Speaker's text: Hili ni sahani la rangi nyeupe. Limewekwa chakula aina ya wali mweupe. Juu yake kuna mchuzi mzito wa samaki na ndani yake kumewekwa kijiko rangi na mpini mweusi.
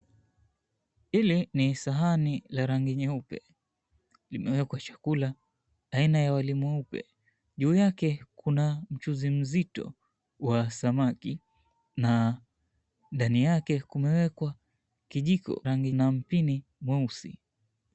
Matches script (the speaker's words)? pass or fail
pass